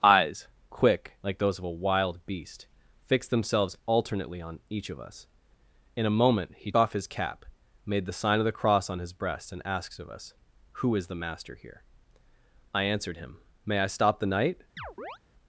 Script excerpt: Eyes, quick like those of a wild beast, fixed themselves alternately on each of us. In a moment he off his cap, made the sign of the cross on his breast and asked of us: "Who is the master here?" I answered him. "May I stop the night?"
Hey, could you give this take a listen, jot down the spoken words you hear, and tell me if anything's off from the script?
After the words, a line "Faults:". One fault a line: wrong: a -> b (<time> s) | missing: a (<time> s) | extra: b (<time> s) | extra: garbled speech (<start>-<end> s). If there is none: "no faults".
Eyes, quick like those of a wild beast, fixed themselves alternately on each of us. In a moment he off his cap, made the sign of the cross on his breast and asked of us: "Who is the master here?" I answered him. "May I stop the night?"
Faults:
no faults